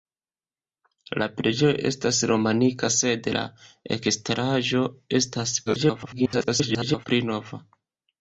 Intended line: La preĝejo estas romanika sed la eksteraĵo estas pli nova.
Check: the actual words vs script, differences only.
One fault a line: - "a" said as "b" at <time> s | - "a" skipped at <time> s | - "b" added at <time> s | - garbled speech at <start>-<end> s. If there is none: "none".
- garbled speech at 5.7-7.0 s